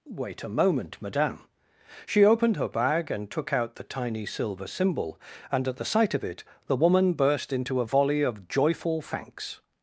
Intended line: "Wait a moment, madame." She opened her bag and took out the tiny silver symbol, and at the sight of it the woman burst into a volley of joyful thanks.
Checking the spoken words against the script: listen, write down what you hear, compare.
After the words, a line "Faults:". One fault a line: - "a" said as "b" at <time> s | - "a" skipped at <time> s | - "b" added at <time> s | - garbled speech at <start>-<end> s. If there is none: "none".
"Wait a moment, madame." She opened her bag and took out the tiny silver symbol, and at the sight of it the woman burst into a volley of joyful thanks.
Faults:
none